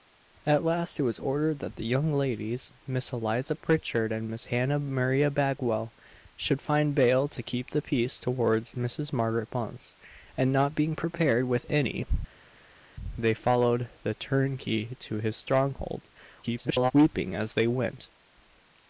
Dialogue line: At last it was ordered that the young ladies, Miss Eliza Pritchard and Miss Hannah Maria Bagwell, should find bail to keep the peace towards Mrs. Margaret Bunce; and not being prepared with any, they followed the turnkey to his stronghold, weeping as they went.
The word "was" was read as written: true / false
true